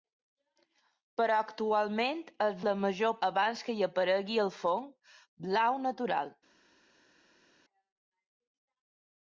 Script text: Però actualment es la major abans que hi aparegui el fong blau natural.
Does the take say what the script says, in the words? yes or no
yes